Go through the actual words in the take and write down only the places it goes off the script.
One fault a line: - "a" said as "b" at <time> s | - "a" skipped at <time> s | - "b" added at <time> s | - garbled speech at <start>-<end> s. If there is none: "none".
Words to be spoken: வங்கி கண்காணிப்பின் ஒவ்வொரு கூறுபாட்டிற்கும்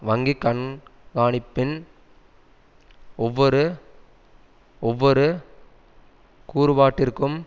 - "ஒவ்வொரு" added at 4.8 s